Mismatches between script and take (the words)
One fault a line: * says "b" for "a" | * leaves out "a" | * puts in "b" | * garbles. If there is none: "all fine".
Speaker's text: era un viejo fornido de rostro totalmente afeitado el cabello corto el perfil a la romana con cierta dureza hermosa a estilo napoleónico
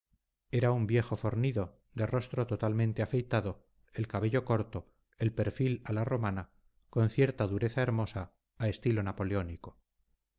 all fine